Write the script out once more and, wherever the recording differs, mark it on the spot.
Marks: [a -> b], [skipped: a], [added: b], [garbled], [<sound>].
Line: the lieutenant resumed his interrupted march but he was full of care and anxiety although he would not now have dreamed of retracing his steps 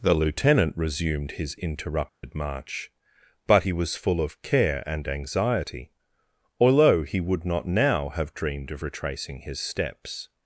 the lieutenant resumed his interrupted [dropout] march but he was full of care and anxiety although he would not now have dreamed of retracing his steps